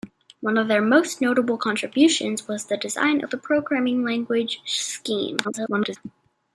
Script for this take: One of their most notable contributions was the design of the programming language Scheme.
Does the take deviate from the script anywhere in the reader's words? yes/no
yes